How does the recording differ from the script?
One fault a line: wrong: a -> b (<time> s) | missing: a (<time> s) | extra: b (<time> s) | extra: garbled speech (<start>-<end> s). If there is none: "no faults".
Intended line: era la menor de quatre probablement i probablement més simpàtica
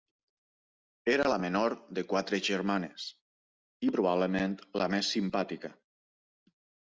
wrong: probablement -> germanes (2.5 s)
extra: la (4.8 s)